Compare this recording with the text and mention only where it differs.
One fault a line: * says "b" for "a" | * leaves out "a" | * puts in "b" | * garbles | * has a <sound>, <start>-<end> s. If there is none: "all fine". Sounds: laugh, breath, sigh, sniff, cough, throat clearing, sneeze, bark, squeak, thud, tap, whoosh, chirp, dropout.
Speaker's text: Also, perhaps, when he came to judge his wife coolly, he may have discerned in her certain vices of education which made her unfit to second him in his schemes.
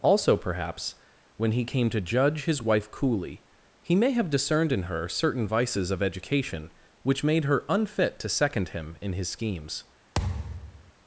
* has a thud, 10.2-10.9 s